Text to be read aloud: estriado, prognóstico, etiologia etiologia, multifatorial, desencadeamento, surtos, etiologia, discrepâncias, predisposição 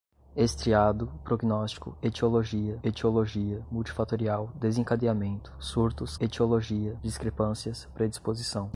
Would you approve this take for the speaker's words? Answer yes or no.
yes